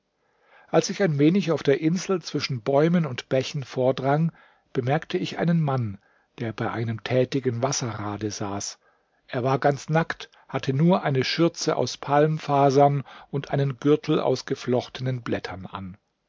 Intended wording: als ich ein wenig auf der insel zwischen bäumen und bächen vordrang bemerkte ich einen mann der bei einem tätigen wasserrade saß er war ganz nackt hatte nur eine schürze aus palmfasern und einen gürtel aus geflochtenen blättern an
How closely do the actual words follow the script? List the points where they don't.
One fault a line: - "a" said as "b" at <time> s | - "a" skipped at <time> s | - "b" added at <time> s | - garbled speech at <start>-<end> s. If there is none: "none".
none